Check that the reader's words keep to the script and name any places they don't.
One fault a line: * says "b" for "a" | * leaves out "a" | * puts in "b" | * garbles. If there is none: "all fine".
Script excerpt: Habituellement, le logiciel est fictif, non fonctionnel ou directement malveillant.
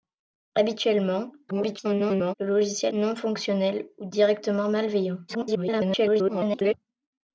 * garbles
* leaves out "est fictif"
* garbles